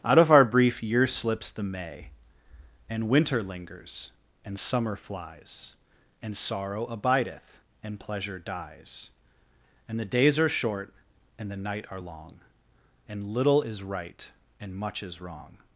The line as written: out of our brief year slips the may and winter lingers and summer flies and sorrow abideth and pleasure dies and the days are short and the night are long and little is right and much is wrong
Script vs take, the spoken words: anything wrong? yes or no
no